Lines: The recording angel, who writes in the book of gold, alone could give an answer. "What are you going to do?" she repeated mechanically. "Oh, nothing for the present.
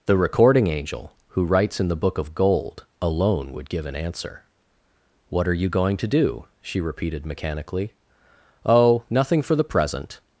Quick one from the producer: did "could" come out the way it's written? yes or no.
no